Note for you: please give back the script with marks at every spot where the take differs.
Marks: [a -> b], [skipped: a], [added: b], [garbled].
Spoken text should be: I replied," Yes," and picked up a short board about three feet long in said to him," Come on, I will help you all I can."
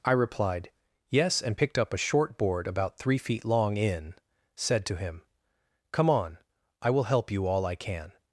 I replied," Yes," and picked up a short board about three feet long in said to him," Come on, I will help you all I can."